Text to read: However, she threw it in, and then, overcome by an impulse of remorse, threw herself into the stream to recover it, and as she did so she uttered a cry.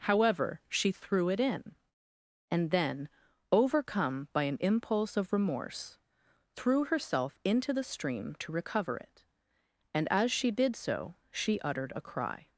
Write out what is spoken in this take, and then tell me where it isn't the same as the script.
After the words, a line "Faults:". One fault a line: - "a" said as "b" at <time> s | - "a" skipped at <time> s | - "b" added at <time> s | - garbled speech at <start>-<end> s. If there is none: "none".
However, she threw it in, and then, overcome by an impulse of remorse, threw herself into the stream to recover it, and as she did so she uttered a cry.
Faults:
none